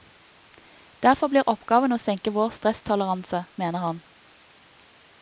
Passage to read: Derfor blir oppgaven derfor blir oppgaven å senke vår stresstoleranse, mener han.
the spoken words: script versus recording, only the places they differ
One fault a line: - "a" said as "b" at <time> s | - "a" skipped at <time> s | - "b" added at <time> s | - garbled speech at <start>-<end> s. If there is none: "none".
- "derfor blir oppgaven" skipped at 1.9 s